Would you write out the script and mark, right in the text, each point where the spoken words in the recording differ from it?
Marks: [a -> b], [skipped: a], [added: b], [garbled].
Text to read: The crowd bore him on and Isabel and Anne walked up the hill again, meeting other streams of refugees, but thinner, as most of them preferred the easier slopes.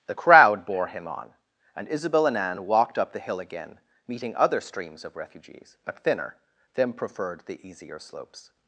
The crowd bore him on and Isabel and Anne walked up the hill again, meeting other streams of refugees, but thinner, [skipped: as most of] them preferred the easier slopes.